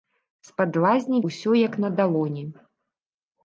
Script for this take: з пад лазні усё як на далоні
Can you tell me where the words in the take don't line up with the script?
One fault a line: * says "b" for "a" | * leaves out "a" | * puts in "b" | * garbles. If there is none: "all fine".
all fine